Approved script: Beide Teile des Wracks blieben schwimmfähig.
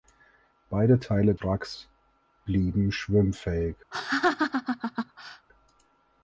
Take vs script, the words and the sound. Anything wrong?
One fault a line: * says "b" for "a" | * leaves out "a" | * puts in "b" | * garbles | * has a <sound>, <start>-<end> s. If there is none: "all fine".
* leaves out "des"
* has a laugh, 3.9-5.5 s